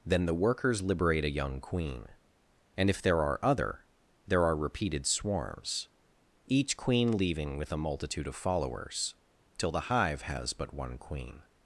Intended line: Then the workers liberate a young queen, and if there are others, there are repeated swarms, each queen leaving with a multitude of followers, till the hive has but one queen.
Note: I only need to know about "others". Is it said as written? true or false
false